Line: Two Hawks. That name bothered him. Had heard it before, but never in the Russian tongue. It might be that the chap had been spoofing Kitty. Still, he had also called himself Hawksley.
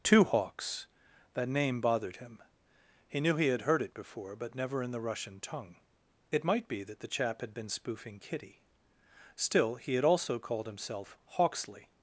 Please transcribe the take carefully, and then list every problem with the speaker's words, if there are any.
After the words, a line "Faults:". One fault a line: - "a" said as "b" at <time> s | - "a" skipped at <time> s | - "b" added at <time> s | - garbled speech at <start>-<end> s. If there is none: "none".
Two Hawks. That name bothered him. He knew he had heard it before, but never in the Russian tongue. It might be that the chap had been spoofing Kitty. Still, he had also called himself Hawksley.
Faults:
- "He knew he" added at 3.1 s